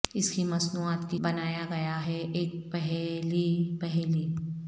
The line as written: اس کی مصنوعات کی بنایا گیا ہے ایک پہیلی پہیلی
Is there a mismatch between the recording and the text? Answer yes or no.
no